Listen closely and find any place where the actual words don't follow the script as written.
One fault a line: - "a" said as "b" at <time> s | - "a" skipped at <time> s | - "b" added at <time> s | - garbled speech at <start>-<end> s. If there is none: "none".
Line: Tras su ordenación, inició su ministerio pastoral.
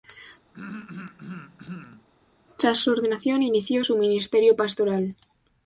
none